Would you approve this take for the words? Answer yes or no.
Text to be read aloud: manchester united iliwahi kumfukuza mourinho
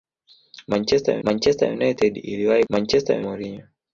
no